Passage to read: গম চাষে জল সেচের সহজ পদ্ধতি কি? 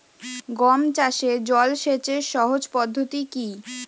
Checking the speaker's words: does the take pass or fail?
pass